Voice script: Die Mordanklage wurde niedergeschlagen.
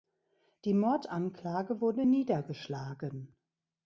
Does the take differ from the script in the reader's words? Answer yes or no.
no